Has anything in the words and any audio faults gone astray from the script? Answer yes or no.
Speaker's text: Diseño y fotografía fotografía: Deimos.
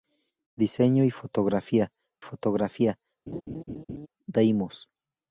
yes